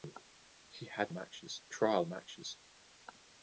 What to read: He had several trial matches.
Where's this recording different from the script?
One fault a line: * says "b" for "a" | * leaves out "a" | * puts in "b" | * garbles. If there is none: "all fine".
* says "matches" for "several"